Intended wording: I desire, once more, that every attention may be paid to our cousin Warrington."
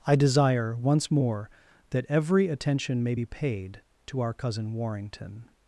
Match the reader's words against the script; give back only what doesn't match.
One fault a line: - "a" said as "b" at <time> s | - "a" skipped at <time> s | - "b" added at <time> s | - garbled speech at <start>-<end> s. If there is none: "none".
none